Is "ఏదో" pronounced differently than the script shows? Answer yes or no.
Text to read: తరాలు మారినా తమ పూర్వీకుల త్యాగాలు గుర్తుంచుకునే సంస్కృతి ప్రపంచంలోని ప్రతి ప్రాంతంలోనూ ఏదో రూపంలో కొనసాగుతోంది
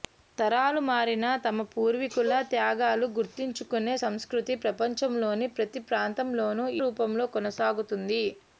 yes